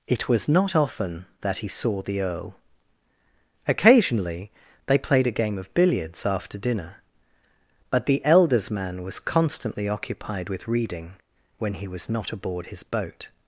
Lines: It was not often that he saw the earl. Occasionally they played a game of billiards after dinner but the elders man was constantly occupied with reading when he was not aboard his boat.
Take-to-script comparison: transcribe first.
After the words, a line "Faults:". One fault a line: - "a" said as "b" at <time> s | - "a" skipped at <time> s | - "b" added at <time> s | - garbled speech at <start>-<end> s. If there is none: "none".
It was not often that he saw the earl. Occasionally they played a game of billiards after dinner but the elders man was constantly occupied with reading when he was not aboard his boat.
Faults:
none